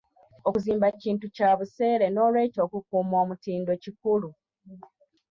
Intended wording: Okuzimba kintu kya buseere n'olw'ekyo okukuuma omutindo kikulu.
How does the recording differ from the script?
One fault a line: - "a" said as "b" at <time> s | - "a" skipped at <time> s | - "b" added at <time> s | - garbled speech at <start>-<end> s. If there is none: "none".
none